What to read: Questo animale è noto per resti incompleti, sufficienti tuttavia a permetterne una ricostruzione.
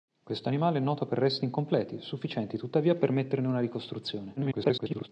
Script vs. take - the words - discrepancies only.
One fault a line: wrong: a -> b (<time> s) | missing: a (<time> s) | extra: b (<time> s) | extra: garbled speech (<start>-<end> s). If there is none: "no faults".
extra: garbled speech (4.4-5.1 s)